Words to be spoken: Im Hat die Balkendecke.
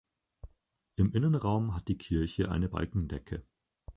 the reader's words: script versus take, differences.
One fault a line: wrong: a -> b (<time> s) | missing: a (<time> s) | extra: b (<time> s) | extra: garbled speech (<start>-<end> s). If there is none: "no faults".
extra: Innenraum (1.1 s)
extra: Kirche eine (2.0 s)